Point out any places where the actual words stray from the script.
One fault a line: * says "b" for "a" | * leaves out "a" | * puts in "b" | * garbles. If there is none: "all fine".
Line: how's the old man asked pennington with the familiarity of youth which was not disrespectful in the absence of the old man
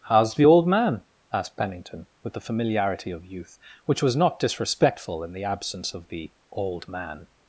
all fine